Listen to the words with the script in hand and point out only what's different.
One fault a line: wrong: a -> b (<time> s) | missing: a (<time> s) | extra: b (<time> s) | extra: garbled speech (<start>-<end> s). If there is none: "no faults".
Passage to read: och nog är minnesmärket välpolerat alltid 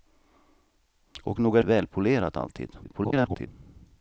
missing: minnesmärket (1.6 s)
extra: garbled speech (2.8-3.5 s)